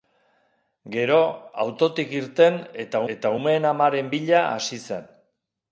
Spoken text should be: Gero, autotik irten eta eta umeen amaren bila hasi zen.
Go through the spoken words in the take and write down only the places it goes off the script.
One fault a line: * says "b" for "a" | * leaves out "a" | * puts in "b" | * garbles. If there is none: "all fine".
all fine